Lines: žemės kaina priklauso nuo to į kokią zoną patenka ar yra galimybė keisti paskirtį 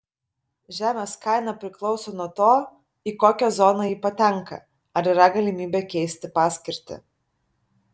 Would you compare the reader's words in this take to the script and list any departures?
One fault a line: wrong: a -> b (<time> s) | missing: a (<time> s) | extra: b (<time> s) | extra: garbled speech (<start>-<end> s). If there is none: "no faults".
extra: ji (3.9 s)